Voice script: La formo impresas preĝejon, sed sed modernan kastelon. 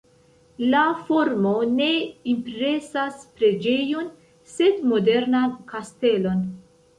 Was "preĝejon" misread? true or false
false